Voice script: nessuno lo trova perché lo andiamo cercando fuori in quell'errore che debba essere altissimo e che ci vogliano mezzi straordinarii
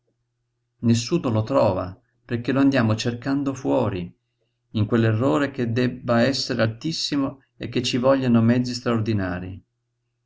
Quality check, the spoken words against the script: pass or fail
pass